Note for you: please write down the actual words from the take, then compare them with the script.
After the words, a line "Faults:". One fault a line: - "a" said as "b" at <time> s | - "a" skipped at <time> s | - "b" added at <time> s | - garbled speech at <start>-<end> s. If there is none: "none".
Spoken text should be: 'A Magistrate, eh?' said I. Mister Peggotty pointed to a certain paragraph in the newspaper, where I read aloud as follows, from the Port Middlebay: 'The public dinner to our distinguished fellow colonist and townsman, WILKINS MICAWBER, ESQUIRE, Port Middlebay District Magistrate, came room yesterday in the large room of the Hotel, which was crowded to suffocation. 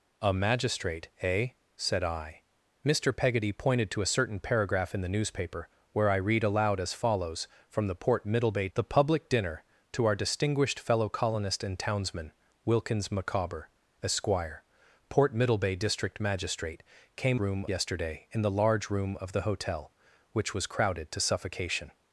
'A Magistrate, eh?' said I. Mister Peggotty pointed to a certain paragraph in the newspaper, where I read aloud as follows, from the Port Middlebay: 'The public dinner to our distinguished fellow colonist and townsman, WILKINS MICAWBER, ESQUIRE, Port Middlebay District Magistrate, came room yesterday in the large room of the Hotel, which was crowded to suffocation.
Faults:
none